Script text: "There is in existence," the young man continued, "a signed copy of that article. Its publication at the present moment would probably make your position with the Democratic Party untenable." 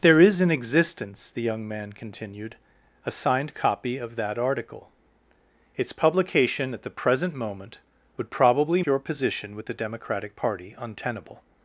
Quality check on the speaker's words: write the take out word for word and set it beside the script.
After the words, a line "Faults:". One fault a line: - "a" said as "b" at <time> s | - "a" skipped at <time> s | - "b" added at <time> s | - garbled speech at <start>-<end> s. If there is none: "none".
"There is in existence," the young man continued, "a signed copy of that article. Its publication at the present moment would probably your position with the Democratic Party untenable."
Faults:
- "make" skipped at 8.8 s